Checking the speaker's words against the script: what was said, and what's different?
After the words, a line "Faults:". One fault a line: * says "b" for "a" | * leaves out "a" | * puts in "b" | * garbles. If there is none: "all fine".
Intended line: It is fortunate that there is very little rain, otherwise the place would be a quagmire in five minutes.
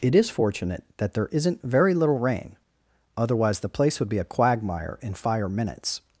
It is fortunate that there isn't very little rain, otherwise the place would be a quagmire in fire minutes.
Faults:
* says "isn't" for "is"
* says "fire" for "five"